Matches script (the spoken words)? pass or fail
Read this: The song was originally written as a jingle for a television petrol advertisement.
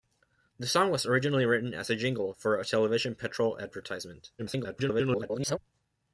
fail